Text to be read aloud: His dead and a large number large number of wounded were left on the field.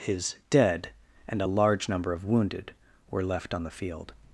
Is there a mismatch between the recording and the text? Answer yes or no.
yes